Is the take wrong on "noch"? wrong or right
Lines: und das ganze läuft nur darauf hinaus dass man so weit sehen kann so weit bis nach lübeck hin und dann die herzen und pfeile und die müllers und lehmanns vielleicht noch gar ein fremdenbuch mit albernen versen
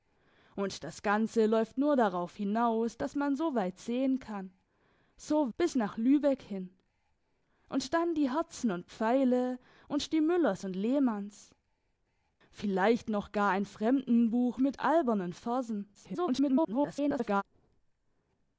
right